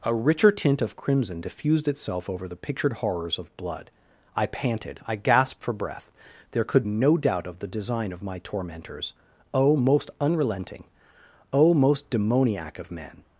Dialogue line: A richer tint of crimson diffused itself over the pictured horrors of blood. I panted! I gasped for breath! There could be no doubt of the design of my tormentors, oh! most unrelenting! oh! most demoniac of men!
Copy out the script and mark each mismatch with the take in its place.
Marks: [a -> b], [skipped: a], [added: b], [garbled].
A richer tint of crimson diffused itself over the pictured horrors of blood. I panted! I gasped for breath! There could [skipped: be] no doubt of the design of my tormentors, oh! most unrelenting! oh! most demoniac of men!